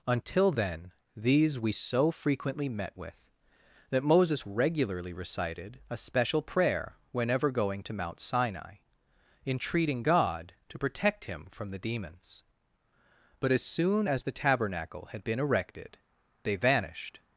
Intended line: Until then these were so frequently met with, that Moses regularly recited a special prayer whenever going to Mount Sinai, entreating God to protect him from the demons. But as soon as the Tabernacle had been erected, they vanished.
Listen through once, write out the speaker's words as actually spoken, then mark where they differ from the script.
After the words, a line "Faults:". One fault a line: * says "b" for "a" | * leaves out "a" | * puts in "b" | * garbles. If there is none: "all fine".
Until then these we so frequently met with, that Moses regularly recited a special prayer whenever going to Mount Sinai, entreating God to protect him from the demons. But as soon as the Tabernacle had been erected, they vanished.
Faults:
* says "we" for "were"